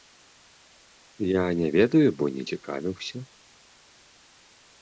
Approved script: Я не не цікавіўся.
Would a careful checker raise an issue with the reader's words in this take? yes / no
yes